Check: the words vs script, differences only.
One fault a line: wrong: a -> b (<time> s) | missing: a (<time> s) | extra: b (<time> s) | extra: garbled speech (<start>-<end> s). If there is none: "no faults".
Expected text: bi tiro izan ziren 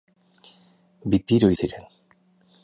missing: izan (1.5 s)